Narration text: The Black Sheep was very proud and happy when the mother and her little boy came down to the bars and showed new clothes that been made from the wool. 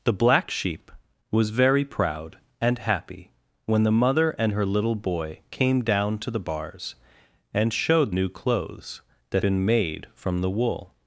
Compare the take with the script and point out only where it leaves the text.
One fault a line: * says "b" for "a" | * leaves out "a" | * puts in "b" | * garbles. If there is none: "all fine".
all fine